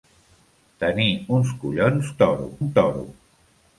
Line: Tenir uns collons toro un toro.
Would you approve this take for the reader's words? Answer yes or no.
yes